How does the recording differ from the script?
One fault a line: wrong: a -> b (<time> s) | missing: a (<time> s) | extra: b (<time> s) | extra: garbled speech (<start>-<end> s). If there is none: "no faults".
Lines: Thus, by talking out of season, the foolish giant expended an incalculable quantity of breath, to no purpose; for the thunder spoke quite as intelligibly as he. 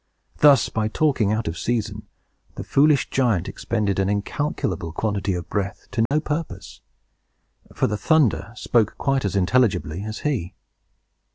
no faults